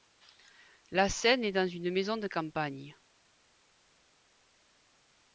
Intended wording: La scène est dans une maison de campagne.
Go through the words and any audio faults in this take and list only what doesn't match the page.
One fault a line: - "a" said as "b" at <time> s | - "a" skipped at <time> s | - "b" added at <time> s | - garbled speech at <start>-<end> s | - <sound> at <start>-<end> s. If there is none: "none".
none